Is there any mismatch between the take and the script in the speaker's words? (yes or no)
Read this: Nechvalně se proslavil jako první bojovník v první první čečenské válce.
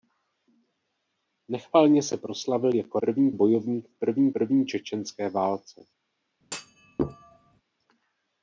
no